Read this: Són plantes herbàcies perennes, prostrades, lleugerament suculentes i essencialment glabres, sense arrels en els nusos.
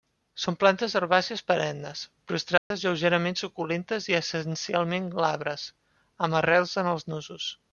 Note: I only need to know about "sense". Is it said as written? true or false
false